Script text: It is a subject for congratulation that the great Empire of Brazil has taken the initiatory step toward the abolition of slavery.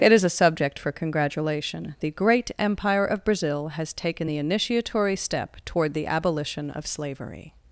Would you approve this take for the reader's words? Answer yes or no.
no